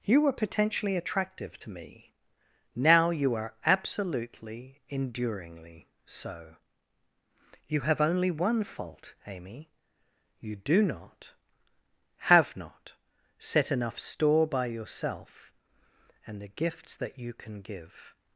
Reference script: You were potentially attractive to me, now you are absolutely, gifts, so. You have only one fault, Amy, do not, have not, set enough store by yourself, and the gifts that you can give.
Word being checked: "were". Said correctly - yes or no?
yes